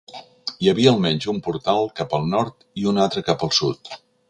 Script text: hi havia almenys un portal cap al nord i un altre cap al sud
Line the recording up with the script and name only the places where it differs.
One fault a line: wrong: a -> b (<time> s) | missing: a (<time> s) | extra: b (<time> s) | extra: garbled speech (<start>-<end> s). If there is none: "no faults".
no faults